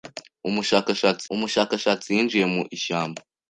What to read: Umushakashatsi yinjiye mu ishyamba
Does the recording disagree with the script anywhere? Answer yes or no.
yes